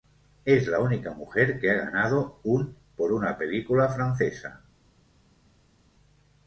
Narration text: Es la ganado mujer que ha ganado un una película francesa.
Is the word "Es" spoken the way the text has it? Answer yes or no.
yes